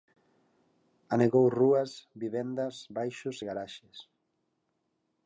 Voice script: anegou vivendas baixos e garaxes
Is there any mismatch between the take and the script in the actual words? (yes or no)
yes